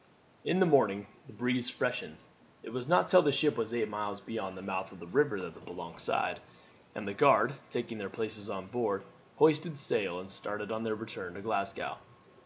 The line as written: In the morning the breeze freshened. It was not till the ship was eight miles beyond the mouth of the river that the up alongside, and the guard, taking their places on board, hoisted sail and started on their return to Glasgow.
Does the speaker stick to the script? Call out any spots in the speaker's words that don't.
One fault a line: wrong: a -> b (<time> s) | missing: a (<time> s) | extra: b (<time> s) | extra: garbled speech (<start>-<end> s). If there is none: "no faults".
no faults